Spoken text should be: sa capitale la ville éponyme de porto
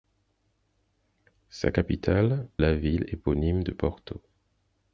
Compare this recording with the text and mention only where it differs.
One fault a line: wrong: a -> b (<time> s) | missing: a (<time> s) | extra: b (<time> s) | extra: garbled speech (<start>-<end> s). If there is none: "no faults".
no faults